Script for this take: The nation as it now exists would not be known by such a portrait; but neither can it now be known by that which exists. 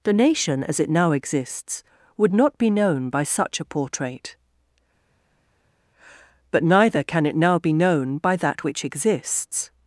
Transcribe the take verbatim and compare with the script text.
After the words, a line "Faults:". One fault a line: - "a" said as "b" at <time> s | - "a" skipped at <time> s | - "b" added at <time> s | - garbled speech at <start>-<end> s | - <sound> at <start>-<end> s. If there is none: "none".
The nation as it now exists would not be known by such a portrait; but neither can it now be known by that which exists.
Faults:
none